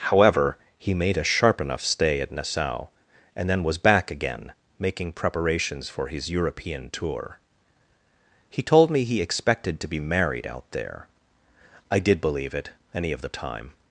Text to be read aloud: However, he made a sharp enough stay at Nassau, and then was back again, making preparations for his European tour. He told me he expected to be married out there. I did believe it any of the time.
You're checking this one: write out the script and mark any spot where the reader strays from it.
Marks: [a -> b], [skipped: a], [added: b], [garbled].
However, he made a sharp enough stay at Nassau, and then was back again, making preparations for his European tour. He told me he expected to be married out there. I did believe it any of the time.